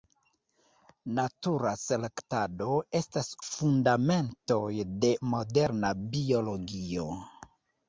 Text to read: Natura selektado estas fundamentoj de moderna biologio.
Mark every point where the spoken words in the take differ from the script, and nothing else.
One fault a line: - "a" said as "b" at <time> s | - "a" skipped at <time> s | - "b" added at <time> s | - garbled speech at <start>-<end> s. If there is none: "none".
none